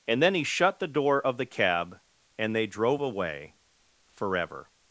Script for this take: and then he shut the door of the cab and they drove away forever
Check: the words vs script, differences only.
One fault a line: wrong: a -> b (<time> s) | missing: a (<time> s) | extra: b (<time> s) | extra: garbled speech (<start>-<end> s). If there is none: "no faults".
no faults